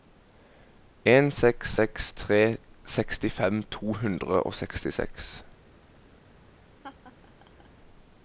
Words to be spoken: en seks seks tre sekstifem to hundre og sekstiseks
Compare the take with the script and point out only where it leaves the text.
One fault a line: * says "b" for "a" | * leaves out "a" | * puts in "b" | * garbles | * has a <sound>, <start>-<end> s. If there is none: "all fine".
* has a laugh, 6.8-7.7 s